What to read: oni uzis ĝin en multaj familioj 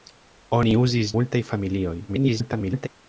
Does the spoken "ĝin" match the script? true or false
false